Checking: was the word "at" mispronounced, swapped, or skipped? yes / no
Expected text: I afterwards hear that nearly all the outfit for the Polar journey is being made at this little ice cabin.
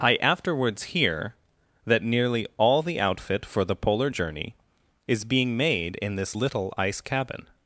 yes